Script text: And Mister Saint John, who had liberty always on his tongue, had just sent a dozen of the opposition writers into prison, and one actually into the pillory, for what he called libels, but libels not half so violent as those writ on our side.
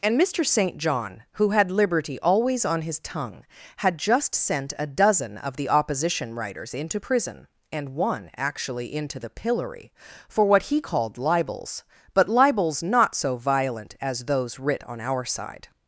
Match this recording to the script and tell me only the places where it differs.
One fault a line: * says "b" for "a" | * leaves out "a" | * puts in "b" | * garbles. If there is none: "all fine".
* leaves out "half"